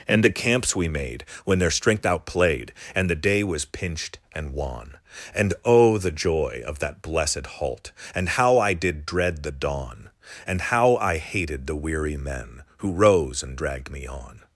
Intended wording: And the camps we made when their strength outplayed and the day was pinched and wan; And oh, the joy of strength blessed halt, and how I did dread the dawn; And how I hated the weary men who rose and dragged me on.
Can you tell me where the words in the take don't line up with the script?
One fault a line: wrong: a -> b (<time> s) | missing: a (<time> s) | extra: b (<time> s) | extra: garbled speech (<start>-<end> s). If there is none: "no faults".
wrong: strength -> that (6.8 s)